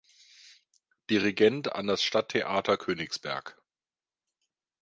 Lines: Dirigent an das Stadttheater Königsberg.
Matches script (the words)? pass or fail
pass